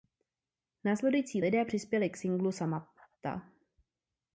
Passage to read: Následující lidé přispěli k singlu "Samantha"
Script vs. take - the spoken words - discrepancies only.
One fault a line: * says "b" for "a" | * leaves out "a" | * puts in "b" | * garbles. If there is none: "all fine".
all fine